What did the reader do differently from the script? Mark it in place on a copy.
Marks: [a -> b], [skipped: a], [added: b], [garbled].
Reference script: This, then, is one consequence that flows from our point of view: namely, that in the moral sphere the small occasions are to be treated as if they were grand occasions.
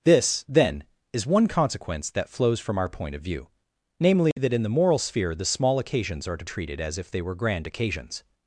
This, then, is one consequence that flows from our point of view: namely, that in the moral sphere the small occasions are to [skipped: be] treated as if they were grand occasions.